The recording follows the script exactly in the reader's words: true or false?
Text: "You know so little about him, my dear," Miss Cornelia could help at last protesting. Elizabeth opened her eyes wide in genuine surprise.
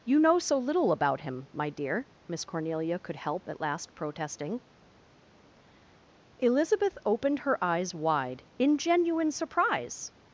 true